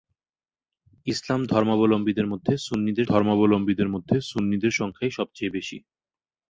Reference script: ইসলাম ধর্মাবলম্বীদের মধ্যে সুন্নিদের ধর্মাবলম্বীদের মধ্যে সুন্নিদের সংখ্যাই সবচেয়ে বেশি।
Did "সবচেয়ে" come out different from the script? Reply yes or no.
no